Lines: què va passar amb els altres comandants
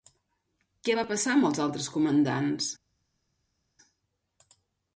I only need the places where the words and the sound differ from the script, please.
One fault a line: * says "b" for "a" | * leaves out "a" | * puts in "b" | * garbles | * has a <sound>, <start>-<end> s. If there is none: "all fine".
all fine